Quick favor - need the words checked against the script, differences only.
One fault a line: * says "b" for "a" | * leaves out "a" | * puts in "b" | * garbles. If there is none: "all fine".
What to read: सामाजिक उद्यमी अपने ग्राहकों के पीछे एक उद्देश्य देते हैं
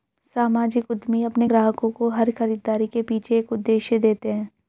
* puts in "को हर खरीदारी"